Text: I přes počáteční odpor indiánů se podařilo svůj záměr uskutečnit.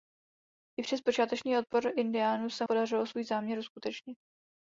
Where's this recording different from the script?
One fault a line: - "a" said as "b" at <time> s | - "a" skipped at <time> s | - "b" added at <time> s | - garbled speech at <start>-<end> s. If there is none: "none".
none